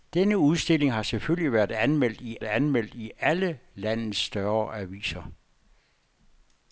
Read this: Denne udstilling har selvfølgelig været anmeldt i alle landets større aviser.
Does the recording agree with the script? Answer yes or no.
no